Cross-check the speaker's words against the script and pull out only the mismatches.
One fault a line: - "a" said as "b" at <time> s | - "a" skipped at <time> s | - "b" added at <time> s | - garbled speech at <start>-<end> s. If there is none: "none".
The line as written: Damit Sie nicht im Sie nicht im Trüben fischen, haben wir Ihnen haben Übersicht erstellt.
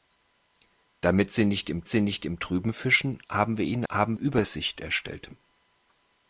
none